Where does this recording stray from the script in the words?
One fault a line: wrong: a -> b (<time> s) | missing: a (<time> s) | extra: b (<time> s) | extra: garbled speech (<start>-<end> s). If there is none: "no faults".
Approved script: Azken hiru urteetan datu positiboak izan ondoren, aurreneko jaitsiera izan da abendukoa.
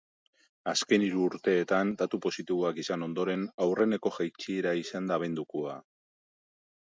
no faults